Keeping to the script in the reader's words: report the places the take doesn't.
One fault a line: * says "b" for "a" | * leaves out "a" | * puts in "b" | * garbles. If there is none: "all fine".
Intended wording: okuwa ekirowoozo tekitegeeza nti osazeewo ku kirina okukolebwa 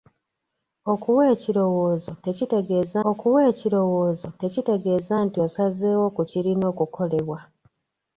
* puts in "okuwa ekirowoozo tekitegeeza"